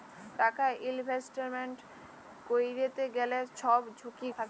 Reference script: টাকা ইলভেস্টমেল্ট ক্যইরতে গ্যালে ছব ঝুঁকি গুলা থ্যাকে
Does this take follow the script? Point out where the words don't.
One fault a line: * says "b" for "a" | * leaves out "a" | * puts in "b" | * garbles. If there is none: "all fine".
* leaves out "গুলা"